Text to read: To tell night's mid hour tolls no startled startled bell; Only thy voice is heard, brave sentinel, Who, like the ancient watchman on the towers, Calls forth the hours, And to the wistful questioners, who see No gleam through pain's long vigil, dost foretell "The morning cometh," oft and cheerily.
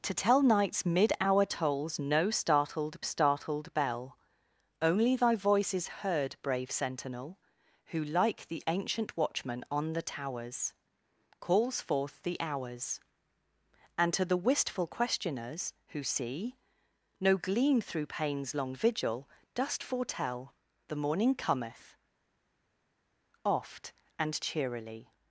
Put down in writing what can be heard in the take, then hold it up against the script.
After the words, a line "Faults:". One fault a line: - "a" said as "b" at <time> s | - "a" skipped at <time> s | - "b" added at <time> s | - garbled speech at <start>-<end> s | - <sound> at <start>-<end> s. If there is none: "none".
To tell night's mid hour tolls no startled startled bell; Only thy voice is heard, brave sentinel, Who, like the ancient watchman on the towers, Calls forth the hours, And to the wistful questioners, who see No gleam through pain's long vigil, dost foretell "The morning cometh," oft and cheerily.
Faults:
none